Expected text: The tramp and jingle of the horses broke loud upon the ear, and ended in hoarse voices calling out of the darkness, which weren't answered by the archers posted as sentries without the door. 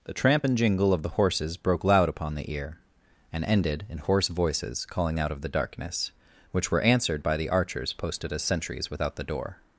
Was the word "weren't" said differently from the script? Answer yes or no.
yes